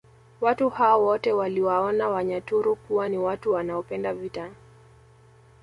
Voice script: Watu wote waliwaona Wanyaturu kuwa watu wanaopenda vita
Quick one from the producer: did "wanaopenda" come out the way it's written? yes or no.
yes